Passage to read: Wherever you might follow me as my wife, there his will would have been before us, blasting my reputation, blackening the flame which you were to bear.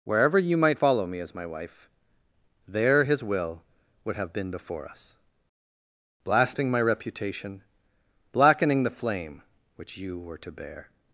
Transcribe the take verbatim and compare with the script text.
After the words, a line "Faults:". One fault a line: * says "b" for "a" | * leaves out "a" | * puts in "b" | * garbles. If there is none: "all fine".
Wherever you might follow me as my wife, there his will would have been before us, blasting my reputation, blackening the flame which you were to bear.
Faults:
all fine